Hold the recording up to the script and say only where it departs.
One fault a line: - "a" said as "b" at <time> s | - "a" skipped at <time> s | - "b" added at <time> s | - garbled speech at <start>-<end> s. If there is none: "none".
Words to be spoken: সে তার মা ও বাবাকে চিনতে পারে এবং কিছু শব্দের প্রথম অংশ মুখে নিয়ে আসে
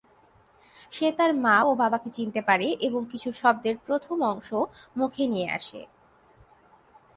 none